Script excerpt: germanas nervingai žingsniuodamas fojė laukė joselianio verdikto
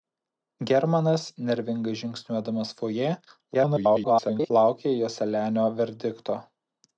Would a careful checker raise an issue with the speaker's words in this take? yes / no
yes